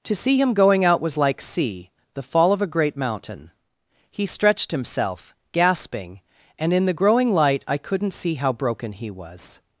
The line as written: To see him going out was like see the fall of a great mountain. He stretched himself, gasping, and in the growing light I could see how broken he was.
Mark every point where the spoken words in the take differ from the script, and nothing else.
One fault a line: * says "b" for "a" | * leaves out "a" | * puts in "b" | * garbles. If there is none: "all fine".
* says "couldn't" for "could"